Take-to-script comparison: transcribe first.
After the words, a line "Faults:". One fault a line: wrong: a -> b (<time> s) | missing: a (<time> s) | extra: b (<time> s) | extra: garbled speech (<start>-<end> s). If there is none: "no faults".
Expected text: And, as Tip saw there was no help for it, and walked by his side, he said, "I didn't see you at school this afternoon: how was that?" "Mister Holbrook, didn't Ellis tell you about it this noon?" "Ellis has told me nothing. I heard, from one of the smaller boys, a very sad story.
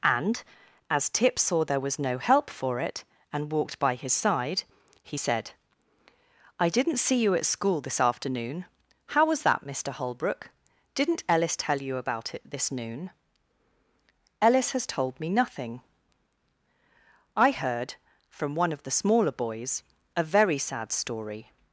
And, as Tip saw there was no help for it, and walked by his side, he said, "I didn't see you at school this afternoon: how was that?" "Mister Holbrook, didn't Ellis tell you about it this noon?" "Ellis has told me nothing. I heard, from one of the smaller boys, a very sad story.
Faults:
no faults